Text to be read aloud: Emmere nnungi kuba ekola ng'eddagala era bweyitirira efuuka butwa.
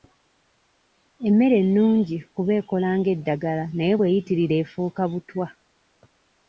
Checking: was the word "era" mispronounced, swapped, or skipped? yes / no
yes